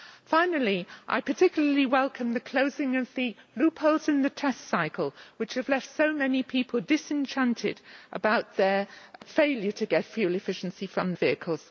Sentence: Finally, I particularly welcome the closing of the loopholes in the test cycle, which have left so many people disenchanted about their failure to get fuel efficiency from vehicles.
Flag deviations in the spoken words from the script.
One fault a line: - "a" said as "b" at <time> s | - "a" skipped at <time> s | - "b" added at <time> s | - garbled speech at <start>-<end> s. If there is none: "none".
none